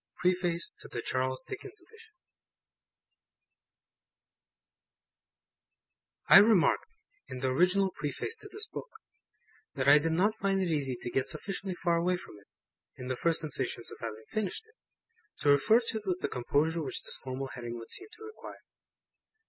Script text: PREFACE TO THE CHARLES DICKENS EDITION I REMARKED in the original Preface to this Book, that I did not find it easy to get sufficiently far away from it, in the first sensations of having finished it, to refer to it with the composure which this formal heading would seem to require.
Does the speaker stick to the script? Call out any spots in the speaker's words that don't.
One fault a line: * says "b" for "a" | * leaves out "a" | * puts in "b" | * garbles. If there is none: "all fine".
all fine